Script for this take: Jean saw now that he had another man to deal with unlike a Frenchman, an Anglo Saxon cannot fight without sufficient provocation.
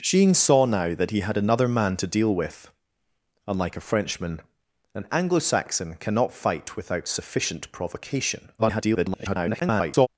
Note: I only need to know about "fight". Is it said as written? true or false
true